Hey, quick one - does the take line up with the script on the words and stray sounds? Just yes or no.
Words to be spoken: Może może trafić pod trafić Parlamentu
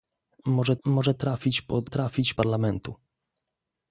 yes